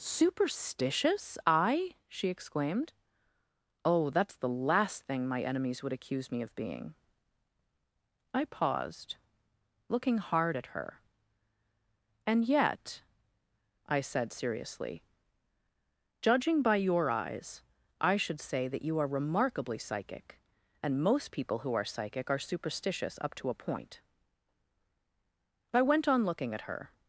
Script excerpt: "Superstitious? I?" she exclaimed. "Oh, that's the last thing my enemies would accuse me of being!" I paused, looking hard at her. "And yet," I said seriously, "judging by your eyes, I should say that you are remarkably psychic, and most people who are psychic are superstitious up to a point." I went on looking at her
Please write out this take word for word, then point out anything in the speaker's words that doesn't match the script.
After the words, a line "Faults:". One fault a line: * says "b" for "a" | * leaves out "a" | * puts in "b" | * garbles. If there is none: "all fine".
"Superstitious? I?" she exclaimed. "Oh, that's the last thing my enemies would accuse me of being!" I paused, looking hard at her. "And yet," I said seriously, "judging by your eyes, I should say that you are remarkably psychic, and most people who are psychic are superstitious up to a point." I went on looking at her
Faults:
all fine